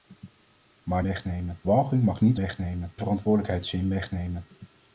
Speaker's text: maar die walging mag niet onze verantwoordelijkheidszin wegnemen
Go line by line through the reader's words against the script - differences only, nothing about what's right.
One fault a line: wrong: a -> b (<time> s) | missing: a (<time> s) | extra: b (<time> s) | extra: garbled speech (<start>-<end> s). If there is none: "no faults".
wrong: die -> wegnemen (1.0 s)
wrong: onze -> wegnemen (2.4 s)